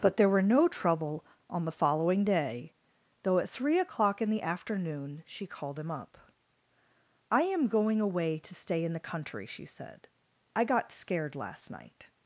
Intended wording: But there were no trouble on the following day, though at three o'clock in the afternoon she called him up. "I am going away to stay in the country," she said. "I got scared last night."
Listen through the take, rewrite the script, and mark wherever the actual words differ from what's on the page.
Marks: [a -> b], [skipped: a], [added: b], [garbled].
But there were no trouble on the following day, though at three o'clock in the afternoon she called him up. "I am going away to stay in the country," she said. "I got scared last night."